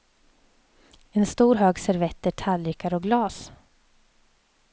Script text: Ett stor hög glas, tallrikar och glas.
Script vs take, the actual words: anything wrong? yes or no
yes